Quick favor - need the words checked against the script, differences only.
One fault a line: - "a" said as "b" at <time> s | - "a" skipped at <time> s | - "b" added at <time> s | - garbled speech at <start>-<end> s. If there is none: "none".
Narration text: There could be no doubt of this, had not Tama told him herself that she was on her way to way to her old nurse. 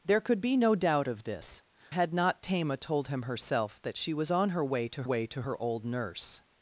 none